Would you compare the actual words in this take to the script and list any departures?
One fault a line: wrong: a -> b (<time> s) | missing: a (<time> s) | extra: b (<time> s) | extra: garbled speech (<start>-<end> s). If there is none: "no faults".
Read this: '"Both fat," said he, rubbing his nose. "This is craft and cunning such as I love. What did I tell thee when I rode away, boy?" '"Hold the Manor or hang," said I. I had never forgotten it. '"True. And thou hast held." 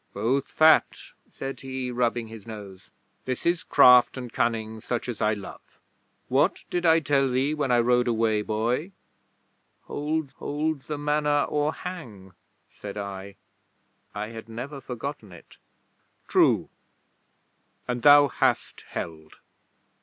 extra: hold (10.4 s)